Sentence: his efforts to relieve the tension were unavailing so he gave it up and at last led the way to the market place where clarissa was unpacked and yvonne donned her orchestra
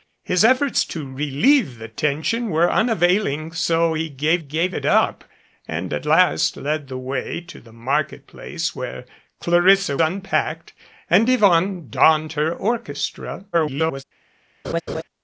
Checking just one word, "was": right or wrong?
wrong